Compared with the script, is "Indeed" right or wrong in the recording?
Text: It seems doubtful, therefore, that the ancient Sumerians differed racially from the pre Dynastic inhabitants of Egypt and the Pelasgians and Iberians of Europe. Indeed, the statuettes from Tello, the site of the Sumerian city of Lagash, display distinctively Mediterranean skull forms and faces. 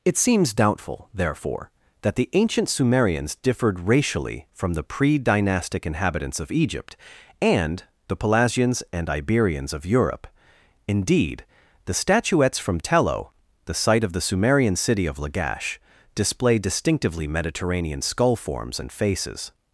right